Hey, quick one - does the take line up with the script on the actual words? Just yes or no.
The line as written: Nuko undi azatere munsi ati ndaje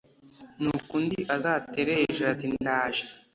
no